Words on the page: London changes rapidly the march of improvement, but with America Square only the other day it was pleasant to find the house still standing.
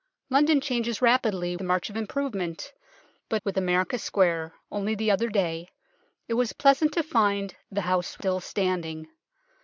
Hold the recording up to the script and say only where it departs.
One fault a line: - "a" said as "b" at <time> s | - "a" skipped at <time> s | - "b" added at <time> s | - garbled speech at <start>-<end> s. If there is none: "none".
none